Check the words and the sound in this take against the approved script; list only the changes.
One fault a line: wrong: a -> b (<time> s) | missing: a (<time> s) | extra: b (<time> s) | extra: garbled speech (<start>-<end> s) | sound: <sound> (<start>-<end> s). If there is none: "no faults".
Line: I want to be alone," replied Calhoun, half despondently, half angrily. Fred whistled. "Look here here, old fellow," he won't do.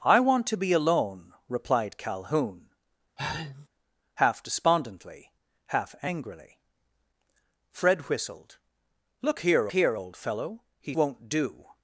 sound: sneeze (3.2-3.7 s)